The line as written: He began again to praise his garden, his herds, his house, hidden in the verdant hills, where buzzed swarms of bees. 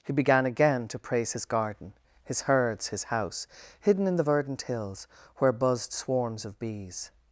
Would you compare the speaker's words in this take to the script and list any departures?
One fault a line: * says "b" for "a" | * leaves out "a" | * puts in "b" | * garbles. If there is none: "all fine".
all fine